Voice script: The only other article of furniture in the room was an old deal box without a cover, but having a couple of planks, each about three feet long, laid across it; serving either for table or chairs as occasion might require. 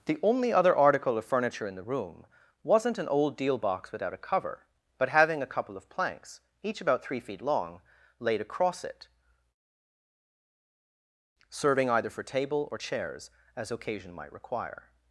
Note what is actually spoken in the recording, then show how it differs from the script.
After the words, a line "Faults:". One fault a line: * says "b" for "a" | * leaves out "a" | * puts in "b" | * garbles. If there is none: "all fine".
The only other article of furniture in the room wasn't an old deal box without a cover, but having a couple of planks, each about three feet long, laid across it; serving either for table or chairs as occasion might require.
Faults:
* says "wasn't" for "was"